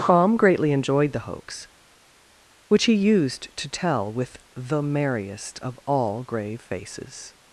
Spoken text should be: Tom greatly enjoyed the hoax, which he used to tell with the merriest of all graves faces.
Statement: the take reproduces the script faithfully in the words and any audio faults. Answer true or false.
false